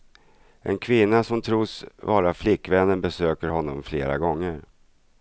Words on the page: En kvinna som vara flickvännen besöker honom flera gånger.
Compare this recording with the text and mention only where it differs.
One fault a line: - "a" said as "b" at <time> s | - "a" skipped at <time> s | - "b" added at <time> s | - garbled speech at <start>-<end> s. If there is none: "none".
- "tros" added at 1.4 s